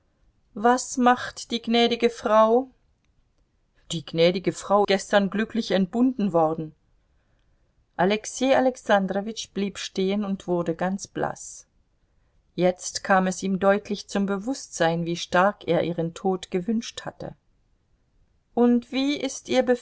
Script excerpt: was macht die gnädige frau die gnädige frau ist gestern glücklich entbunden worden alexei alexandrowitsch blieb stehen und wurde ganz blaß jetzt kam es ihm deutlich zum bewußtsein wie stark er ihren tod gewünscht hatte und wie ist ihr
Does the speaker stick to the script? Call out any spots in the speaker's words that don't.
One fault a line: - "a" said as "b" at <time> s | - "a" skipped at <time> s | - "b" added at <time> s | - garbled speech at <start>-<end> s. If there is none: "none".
- "ist" skipped at 4.8 s